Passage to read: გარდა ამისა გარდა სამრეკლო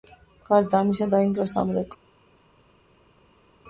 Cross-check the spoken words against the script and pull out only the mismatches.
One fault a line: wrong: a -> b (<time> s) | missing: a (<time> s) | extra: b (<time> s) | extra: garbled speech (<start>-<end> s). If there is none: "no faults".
wrong: გარდა -> დაინგრა (1.1 s)